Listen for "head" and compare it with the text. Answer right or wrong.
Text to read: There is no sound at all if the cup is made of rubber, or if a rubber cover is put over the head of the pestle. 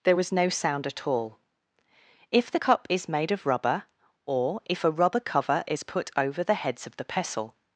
wrong